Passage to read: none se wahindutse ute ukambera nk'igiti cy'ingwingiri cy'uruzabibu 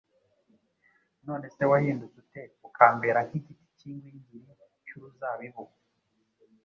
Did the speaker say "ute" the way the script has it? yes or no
yes